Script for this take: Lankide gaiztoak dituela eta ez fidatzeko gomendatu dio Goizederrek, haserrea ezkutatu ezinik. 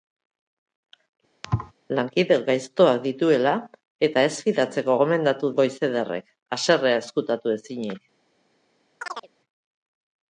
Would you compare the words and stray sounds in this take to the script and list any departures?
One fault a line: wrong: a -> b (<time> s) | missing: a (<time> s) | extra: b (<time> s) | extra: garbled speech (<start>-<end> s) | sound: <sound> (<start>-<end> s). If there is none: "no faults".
sound: thud (1.4-1.7 s)
missing: dio (5.5 s)
sound: chirp (9.0-9.3 s)